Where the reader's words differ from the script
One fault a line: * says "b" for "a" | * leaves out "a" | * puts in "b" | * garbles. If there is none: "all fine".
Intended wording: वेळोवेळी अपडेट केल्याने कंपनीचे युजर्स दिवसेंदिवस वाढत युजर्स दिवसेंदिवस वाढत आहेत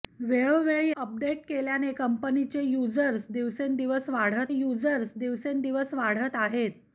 all fine